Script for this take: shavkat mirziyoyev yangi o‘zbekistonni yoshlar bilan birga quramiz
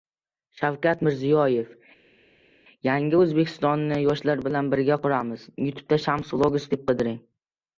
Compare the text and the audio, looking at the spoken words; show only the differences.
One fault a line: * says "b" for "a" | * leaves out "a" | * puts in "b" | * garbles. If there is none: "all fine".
all fine